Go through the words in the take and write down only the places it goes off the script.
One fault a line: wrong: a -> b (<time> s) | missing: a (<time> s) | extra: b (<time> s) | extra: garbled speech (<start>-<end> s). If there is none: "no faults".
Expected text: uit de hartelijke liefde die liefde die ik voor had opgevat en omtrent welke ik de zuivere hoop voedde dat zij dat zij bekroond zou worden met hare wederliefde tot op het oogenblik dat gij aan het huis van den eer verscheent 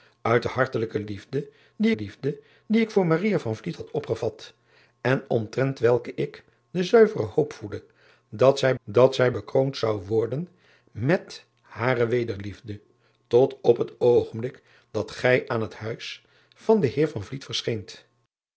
no faults